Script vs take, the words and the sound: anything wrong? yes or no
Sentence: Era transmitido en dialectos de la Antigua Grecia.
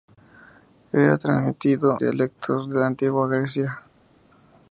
yes